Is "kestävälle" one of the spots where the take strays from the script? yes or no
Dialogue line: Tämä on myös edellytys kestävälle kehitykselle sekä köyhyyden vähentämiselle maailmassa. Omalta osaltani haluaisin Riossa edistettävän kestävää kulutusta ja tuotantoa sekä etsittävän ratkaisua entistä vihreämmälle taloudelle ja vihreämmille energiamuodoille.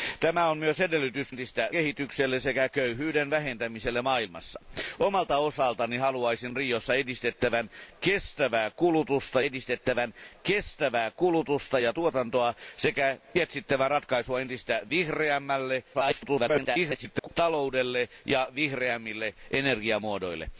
yes